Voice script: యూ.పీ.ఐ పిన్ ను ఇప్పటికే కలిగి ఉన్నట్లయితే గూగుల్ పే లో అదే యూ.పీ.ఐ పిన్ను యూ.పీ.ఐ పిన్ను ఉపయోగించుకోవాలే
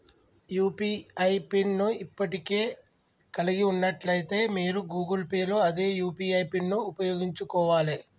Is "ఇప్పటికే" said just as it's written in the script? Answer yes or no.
yes